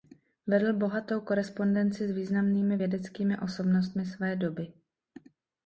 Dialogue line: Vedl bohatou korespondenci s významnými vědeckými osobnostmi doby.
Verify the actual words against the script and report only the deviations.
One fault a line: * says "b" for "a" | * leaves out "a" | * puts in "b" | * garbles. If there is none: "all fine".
* puts in "své"